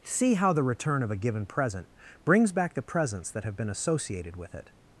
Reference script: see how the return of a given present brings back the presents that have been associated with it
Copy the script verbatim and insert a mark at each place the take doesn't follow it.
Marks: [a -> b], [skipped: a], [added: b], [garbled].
see how the return of a given present brings back the presents that have been associated with it